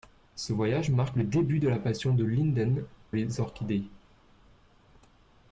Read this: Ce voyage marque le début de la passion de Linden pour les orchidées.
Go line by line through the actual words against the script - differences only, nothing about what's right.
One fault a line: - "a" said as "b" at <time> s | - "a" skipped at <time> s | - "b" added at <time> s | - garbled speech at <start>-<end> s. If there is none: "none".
- "pour" skipped at 2.8 s